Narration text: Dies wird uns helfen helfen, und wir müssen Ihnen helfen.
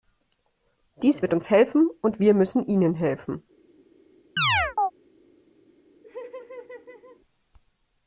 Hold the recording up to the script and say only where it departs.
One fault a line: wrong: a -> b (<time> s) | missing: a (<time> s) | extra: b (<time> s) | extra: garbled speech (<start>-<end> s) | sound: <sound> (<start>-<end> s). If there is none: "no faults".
missing: helfen (1.9 s)
sound: chirp (4.4-4.9 s)
sound: laugh (6.0-7.2 s)